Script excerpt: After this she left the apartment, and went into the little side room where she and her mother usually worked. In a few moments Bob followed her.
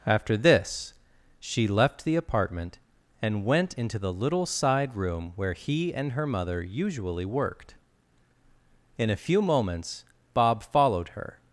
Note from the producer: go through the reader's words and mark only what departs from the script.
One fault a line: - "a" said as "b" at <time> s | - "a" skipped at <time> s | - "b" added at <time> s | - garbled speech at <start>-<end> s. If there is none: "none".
- "she" said as "he" at 5.5 s